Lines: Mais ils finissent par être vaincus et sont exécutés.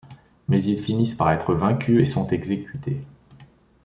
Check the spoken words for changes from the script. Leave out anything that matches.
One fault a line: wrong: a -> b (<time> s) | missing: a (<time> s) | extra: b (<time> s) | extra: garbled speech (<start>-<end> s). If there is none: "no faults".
no faults